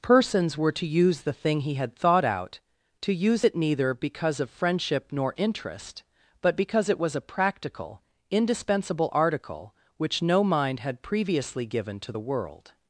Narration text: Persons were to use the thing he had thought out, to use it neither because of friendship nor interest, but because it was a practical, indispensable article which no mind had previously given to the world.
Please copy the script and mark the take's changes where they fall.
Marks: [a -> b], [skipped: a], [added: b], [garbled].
Persons were to use the thing he had thought out, to use it neither because of friendship nor interest, but because it was a practical, indispensable article which no mind had previously given to the world.